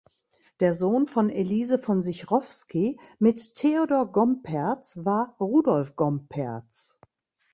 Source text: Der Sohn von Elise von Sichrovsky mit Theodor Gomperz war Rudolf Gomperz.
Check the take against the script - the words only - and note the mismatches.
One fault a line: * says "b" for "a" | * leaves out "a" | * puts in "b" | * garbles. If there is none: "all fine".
all fine